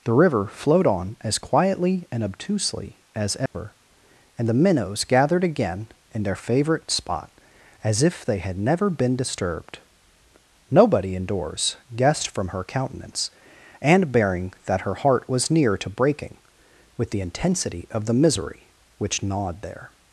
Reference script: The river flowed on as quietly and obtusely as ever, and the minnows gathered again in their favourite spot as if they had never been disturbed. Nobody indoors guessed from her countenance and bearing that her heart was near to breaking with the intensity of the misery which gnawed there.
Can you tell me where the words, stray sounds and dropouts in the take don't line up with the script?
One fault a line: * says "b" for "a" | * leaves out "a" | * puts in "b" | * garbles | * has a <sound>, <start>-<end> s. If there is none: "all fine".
* has a dropout, 3.5-3.5 s